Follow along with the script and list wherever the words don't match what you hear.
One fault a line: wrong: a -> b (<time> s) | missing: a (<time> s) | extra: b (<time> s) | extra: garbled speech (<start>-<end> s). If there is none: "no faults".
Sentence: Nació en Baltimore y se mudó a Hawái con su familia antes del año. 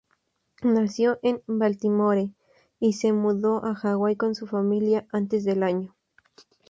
no faults